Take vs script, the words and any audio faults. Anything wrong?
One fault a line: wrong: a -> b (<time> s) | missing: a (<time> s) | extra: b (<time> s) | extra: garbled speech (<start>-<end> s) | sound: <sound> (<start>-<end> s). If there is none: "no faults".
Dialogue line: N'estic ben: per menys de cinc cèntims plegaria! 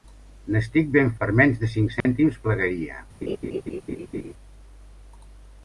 sound: dropout (2.0-2.1 s)
sound: laugh (3.2-4.3 s)